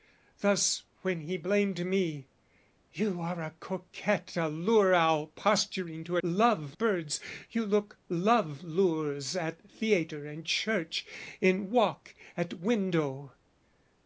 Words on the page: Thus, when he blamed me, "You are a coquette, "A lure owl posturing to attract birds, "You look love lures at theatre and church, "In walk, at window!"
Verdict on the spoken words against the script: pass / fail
fail